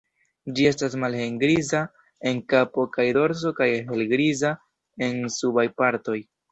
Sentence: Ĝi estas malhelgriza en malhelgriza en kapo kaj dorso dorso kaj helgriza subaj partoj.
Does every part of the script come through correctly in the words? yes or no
no